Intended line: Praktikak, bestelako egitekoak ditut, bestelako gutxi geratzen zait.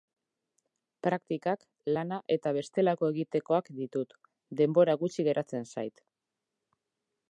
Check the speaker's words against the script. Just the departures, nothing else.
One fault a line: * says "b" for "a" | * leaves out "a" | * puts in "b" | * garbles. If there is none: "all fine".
* puts in "lana eta"
* says "denbora" for "bestelako"